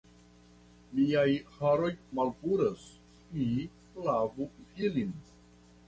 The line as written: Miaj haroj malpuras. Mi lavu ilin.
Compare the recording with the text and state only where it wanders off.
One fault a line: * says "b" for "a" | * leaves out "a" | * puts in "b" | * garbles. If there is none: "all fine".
all fine